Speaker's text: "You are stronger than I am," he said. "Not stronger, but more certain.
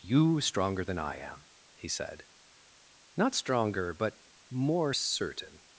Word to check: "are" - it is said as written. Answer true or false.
false